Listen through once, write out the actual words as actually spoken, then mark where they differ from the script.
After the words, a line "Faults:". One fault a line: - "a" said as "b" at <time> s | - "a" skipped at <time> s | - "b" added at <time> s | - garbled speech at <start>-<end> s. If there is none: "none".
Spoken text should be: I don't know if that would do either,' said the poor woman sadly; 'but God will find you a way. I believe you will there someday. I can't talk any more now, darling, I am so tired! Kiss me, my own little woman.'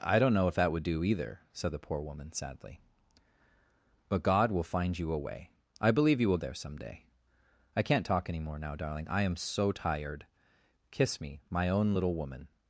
I don't know if that would do either,' said the poor woman sadly; 'but God will find you a way. I believe you will there someday. I can't talk any more now, darling, I am so tired! Kiss me, my own little woman.'
Faults:
none